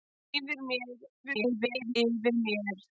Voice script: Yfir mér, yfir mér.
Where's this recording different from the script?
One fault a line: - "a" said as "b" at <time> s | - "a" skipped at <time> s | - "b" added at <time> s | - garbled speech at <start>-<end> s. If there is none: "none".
- garbled speech at 1.2-1.9 s